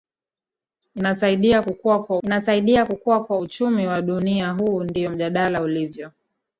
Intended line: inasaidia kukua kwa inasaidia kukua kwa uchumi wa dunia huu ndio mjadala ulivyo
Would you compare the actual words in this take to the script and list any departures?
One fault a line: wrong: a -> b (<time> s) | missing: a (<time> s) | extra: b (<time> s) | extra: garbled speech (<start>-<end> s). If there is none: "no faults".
no faults